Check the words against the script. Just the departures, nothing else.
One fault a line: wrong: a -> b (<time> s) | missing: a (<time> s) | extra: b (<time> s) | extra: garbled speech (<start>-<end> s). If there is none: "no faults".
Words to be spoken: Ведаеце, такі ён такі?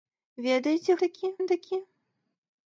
no faults